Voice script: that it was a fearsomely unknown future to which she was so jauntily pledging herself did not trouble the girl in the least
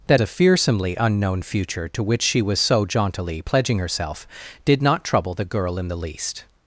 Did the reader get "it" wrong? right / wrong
wrong